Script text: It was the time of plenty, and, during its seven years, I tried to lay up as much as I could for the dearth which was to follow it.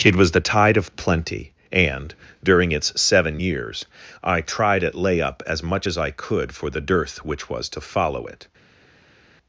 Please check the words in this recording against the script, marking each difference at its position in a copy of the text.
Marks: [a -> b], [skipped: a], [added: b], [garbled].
It was the [time -> tide] of plenty, and, during its seven years, I tried [to -> at] lay up as much as I could for the dearth which was to follow it.